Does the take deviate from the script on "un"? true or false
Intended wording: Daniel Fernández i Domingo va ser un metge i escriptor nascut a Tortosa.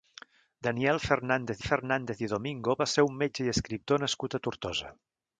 false